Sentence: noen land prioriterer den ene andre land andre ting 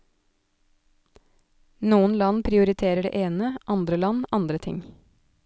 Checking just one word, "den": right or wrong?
wrong